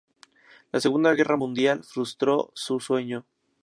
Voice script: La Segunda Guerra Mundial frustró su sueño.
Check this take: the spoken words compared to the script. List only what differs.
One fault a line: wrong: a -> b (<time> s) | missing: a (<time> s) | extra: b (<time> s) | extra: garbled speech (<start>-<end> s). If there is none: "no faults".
no faults